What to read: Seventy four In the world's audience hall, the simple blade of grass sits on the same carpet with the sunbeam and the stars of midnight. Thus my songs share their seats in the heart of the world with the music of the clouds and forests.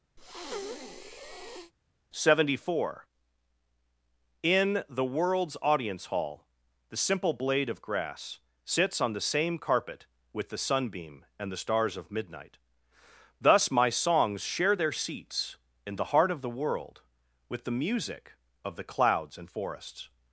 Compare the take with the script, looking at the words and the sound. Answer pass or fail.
fail